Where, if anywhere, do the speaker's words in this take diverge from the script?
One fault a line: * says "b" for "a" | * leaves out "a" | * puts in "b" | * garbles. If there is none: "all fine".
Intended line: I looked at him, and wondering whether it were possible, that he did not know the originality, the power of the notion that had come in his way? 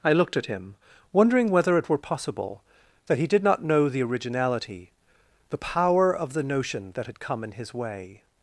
* leaves out "and"